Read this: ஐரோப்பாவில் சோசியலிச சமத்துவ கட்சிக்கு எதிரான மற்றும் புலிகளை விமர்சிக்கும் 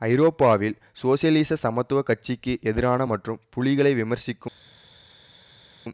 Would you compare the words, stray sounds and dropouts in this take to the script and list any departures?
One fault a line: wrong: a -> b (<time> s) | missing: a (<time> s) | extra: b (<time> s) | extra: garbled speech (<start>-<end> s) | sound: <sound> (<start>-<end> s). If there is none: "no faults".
no faults